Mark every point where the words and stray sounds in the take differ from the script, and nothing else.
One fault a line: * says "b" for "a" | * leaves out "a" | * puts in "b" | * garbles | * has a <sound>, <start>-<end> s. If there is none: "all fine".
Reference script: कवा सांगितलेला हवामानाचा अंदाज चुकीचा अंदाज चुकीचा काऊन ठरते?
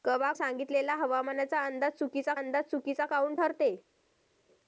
all fine